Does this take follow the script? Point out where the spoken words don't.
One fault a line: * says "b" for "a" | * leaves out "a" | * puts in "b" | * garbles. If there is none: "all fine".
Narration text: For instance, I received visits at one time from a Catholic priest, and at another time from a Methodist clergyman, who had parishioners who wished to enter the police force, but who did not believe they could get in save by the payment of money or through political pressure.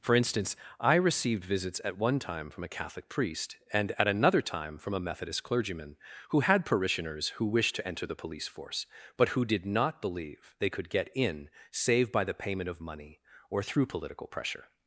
all fine